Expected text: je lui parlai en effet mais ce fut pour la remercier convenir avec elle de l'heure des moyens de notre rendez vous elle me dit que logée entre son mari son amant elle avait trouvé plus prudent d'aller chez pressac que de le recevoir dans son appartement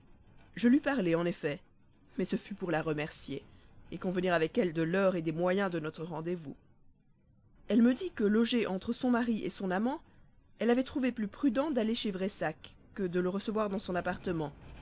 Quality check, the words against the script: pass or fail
pass